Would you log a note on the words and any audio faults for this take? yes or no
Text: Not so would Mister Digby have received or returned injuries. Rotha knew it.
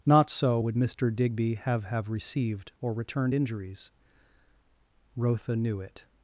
yes